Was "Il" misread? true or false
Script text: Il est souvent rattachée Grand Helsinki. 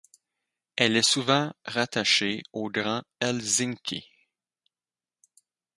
true